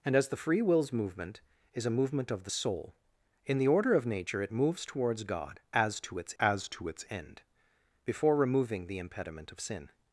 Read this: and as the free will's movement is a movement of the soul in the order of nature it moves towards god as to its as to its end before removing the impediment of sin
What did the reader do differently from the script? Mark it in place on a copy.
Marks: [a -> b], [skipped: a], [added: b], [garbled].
and as the free will's movement is a movement of the soul in the order of nature it moves towards god as to its as to its end before removing the impediment of sin